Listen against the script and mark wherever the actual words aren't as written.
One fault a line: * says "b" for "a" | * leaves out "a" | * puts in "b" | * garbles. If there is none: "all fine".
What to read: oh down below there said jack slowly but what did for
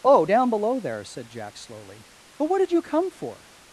* puts in "you come"